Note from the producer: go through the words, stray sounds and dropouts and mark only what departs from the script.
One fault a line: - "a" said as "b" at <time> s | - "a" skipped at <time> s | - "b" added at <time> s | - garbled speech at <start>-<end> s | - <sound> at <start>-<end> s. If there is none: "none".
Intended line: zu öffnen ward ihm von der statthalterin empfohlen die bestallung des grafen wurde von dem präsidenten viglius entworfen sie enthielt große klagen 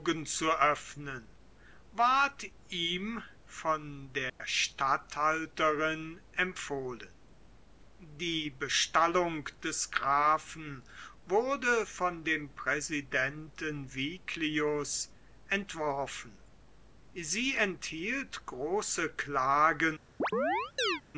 - dropout at 4.3-4.4 s
- chirp at 20.2-21.0 s